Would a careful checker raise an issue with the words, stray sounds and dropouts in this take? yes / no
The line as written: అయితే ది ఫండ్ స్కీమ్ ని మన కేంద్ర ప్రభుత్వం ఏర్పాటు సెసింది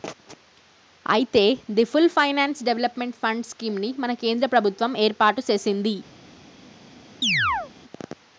yes